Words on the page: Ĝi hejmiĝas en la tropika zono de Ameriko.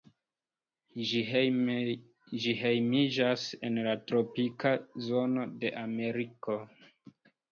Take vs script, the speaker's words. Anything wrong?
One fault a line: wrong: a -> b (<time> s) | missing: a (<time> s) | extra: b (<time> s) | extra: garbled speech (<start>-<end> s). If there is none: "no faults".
no faults